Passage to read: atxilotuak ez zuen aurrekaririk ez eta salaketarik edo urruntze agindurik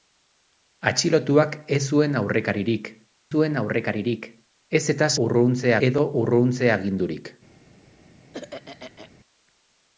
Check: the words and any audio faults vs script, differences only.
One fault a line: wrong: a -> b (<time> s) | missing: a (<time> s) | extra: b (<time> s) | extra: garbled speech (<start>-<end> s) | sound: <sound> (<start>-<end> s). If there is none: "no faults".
extra: zuen aurrekaririk (3.4 s)
wrong: salaketarik -> urruntze (5.3 s)
sound: throat clearing (8.3-9.1 s)